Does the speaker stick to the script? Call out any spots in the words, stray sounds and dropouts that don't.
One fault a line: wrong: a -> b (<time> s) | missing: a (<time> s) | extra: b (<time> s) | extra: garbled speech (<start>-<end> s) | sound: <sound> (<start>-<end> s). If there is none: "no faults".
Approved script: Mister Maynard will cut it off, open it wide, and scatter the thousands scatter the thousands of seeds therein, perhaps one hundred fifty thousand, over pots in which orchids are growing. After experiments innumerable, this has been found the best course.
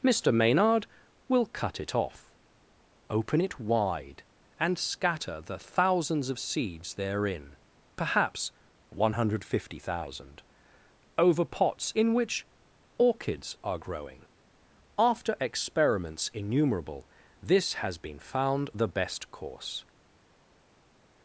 missing: scatter the thousands (6.3 s)